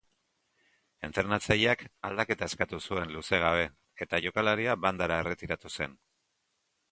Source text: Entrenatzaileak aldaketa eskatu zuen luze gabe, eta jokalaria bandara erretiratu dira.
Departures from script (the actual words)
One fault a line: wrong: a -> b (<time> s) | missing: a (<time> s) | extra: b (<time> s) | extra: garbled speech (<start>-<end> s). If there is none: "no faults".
wrong: dira -> zen (5.8 s)